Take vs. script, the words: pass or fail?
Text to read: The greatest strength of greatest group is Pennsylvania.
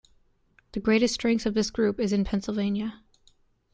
fail